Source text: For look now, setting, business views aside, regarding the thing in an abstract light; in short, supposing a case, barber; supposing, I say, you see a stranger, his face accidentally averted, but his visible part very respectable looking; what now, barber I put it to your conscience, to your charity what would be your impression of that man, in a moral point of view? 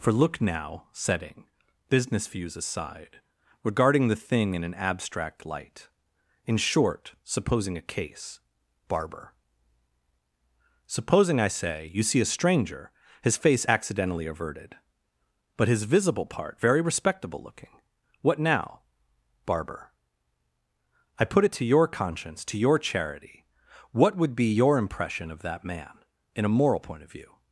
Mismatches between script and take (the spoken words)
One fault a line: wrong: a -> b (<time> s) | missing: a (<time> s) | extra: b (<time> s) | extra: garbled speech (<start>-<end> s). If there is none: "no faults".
no faults